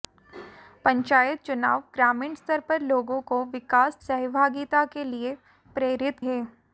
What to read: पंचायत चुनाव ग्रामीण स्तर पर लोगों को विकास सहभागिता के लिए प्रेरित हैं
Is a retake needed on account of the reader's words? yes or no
no